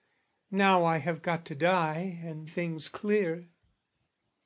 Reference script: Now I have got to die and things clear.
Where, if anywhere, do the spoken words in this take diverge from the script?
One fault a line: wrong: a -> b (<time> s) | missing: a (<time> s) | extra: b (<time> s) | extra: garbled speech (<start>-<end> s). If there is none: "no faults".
no faults